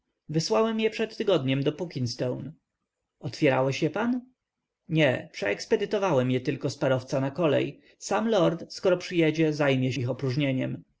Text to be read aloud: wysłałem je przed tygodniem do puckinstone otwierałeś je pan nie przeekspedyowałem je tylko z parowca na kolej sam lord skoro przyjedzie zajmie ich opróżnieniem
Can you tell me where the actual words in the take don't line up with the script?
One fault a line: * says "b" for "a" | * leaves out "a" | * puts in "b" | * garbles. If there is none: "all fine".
all fine